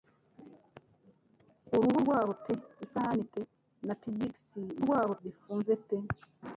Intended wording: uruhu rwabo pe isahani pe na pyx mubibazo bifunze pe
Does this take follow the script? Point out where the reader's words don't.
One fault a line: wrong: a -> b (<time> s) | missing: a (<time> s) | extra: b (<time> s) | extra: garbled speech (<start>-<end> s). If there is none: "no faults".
wrong: mubibazo -> rwabo (4.8 s)